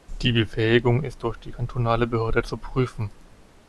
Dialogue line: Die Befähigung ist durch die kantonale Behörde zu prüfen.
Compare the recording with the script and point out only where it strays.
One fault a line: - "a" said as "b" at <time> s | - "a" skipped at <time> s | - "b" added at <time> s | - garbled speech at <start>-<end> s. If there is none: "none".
none